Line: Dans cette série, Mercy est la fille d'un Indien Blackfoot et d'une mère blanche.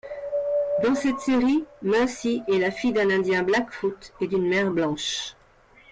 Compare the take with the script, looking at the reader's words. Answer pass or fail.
pass